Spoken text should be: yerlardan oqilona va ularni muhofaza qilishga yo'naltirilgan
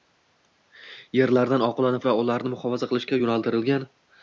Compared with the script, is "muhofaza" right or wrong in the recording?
right